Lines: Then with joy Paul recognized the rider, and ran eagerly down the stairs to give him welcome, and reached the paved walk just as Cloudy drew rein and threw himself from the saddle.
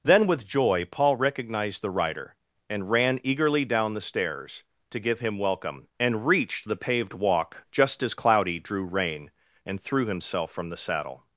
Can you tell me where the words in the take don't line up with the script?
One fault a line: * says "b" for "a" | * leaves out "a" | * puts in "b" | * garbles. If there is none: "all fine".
all fine